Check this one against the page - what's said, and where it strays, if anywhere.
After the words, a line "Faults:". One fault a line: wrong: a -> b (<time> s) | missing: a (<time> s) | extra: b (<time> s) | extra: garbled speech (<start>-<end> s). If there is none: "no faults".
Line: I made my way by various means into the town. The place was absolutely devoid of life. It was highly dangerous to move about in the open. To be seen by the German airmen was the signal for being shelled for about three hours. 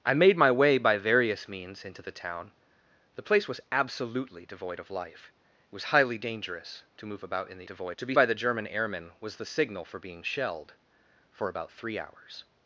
I made my way by various means into the town. The place was absolutely devoid of life. It was highly dangerous to move about in the devoid. To be by the German airmen was the signal for being shelled for about three hours.
Faults:
wrong: open -> devoid (7.7 s)
missing: seen (8.2 s)